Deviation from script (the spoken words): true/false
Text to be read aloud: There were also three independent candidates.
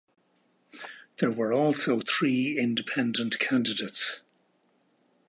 false